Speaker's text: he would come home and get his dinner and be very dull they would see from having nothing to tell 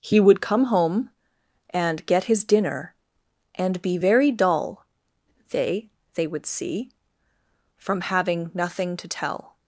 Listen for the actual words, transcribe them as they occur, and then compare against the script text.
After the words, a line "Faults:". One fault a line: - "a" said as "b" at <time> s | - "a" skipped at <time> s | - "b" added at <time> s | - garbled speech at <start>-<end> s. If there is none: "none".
he would come home and get his dinner and be very dull they they would see from having nothing to tell
Faults:
- "they" added at 6.1 s